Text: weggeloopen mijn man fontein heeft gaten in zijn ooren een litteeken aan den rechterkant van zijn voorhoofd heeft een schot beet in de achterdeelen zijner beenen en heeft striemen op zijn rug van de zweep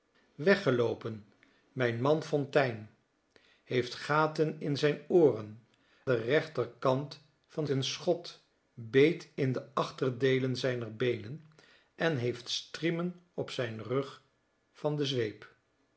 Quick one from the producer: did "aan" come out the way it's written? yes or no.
no